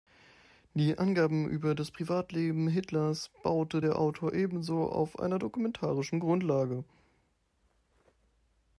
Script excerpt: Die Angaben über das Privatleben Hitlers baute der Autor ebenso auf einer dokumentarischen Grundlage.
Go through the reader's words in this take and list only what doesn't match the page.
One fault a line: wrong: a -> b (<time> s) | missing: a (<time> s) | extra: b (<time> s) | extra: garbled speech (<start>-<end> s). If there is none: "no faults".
no faults